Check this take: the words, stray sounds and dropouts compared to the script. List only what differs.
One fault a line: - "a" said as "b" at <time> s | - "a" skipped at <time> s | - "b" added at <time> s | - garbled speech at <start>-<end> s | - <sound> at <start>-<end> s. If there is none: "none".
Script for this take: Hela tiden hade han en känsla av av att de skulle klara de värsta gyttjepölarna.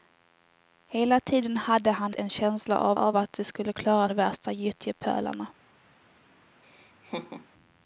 - laugh at 6.6-7.5 s